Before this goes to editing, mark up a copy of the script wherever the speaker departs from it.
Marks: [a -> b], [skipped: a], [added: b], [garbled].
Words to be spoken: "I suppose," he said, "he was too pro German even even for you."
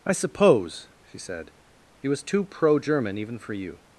"I suppose," [he -> she] said, "he was too pro German even [skipped: even] for you."